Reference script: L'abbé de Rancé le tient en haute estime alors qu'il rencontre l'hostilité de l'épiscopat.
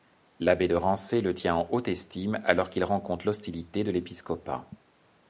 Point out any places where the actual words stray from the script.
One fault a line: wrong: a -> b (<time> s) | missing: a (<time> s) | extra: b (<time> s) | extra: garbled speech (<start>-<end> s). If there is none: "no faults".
no faults